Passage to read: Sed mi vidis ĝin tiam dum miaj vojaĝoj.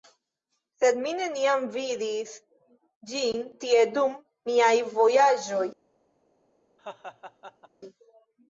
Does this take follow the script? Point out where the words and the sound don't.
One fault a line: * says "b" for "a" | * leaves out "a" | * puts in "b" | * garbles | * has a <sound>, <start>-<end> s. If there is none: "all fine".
* puts in "neniam"
* says "tie" for "tiam"
* has a laugh, 6.8-7.7 s